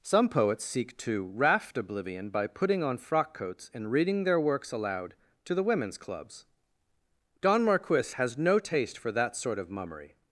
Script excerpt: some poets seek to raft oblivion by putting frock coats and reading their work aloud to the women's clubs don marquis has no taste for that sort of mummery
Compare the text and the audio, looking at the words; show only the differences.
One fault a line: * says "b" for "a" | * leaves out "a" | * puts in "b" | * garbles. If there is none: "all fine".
* puts in "on"
* says "works" for "work"